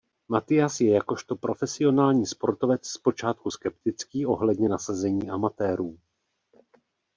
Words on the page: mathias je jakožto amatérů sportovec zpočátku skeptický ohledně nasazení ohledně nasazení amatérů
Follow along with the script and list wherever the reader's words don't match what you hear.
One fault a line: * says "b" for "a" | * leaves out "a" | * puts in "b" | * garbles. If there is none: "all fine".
* says "profesionální" for "amatérů"
* leaves out "ohledně nasazení"